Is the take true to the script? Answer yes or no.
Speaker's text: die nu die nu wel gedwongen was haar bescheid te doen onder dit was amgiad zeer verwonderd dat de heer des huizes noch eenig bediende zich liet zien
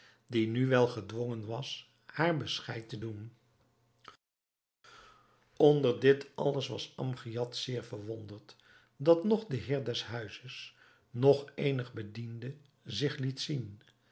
no